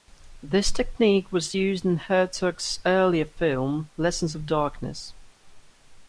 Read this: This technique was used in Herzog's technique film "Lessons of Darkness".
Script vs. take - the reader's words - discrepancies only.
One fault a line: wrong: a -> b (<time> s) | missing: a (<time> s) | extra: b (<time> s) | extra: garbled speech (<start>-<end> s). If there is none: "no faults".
wrong: technique -> earlier (2.9 s)